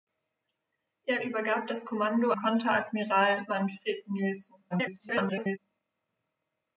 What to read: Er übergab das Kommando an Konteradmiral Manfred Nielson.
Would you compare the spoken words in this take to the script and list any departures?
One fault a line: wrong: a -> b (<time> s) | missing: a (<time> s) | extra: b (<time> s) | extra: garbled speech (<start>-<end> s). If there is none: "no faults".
missing: an (2.3 s)
extra: garbled speech (4.7-5.6 s)